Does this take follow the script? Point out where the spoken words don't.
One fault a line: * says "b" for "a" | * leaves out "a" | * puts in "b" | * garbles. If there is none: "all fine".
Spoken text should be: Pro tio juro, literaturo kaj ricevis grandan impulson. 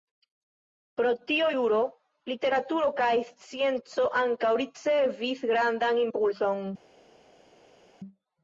* puts in "scienco ankaŭ"